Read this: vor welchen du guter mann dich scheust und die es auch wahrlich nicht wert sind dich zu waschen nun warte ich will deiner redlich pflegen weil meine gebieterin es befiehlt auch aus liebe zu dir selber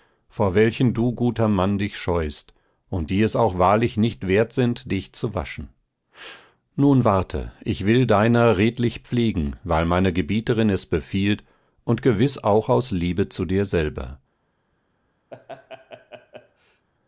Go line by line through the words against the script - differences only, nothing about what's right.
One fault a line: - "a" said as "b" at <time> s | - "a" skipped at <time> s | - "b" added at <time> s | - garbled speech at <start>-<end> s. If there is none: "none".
- "und gewiß" added at 11.8 s